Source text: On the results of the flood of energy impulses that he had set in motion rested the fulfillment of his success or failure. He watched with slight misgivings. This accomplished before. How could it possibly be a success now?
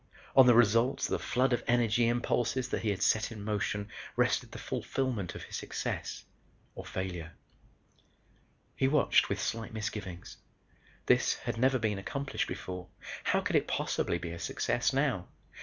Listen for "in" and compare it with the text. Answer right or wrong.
right